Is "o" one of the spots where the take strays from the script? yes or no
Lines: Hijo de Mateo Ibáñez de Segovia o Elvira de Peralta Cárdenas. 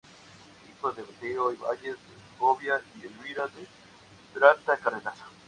yes